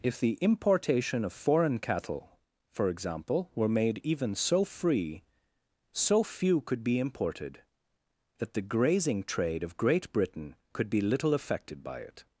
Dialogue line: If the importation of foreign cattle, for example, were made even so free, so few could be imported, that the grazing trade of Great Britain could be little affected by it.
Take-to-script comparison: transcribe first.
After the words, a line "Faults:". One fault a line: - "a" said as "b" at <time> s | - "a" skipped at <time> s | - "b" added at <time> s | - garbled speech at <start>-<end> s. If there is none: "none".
If the importation of foreign cattle, for example, were made even so free, so few could be imported, that the grazing trade of Great Britain could be little affected by it.
Faults:
none